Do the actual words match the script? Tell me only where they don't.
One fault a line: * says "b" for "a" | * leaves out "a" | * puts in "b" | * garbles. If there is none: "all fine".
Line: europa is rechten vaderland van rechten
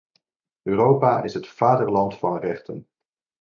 * says "het" for "rechten"